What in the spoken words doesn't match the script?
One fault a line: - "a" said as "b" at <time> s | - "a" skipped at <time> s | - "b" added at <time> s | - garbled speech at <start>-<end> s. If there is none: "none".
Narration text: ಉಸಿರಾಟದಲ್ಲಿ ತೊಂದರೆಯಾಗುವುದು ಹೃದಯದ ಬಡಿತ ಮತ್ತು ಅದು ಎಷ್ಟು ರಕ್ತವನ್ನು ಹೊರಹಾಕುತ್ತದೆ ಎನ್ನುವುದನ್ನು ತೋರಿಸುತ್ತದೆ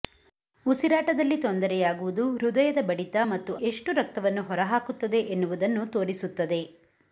- "ಅದು" skipped at 3.5 s